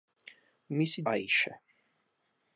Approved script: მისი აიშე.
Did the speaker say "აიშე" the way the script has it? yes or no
yes